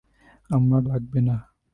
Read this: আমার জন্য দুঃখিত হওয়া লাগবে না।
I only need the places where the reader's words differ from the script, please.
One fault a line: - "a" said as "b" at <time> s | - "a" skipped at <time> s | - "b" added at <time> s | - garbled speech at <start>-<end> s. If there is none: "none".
- "জন্য দুঃখিত হওয়া" skipped at 0.8 s